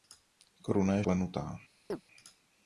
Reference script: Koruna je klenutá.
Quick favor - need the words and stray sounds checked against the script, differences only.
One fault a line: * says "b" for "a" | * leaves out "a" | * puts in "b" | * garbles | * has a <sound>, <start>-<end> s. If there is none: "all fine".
* has a chirp, 1.9-2.0 s